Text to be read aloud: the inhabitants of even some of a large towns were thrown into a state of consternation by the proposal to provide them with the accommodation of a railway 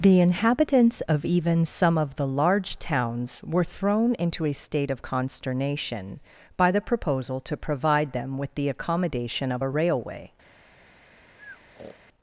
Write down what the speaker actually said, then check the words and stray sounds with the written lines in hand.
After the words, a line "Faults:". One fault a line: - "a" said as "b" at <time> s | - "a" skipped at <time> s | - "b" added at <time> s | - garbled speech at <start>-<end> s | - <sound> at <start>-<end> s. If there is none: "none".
the inhabitants of even some of the large towns were thrown into a state of consternation by the proposal to provide them with the accommodation of a railway
Faults:
- "a" said as "the" at 2.1 s
- breath at 11.4-12.0 s